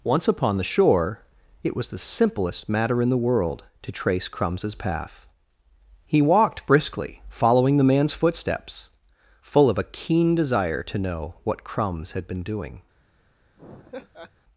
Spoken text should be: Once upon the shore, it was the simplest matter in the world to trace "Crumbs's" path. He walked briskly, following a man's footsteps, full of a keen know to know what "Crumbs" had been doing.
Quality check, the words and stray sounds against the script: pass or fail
fail